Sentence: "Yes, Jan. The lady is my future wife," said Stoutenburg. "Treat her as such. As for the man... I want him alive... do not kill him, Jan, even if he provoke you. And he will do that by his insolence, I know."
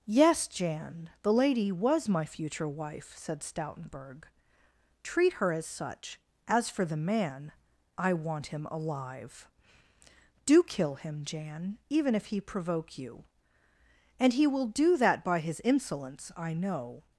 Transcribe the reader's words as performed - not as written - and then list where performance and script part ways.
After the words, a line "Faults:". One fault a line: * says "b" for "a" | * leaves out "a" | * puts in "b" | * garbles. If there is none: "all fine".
"Yes, Jan. The lady was my future wife," said Stoutenburg. "Treat her as such. As for the man... I want him alive... do kill him, Jan, even if he provoke you. And he will do that by his insolence, I know."
Faults:
* says "was" for "is"
* leaves out "not"